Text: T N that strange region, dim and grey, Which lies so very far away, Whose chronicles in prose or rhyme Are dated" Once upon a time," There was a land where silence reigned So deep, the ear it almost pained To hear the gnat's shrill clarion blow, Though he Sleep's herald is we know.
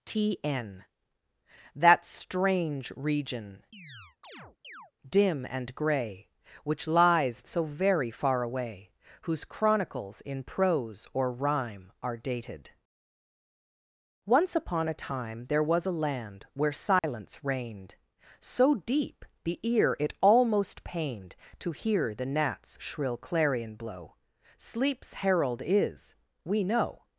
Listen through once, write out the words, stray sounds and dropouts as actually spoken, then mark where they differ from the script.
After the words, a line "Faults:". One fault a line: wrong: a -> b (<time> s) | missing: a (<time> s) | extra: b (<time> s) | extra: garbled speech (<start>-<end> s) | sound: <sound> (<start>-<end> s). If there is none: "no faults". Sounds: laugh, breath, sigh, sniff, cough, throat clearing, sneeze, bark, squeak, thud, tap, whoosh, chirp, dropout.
T N that strange region, dim and grey, Which lies so very far away, Whose chronicles in prose or rhyme Are dated" Once upon a time," There was a land where silence reigned So deep, the ear it almost pained To hear the gnat's shrill clarion blow, Sleep's herald is we know.
Faults:
sound: chirp (3.7-4.9 s)
sound: dropout (17.0-17.0 s)
missing: Though he (24.2 s)